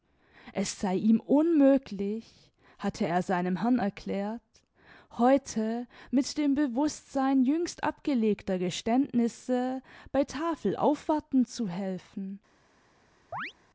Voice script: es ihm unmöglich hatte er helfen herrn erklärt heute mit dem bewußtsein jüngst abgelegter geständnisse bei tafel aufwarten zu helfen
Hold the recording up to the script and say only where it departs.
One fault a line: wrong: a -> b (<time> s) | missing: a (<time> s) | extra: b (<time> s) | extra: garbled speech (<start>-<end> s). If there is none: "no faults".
extra: sei (0.8 s)
wrong: helfen -> seinem (3.2 s)